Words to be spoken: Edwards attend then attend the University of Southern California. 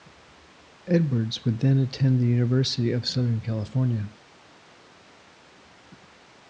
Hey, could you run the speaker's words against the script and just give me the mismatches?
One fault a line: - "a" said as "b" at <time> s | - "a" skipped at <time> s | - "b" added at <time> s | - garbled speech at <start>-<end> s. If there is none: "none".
- "attend" said as "would" at 1.4 s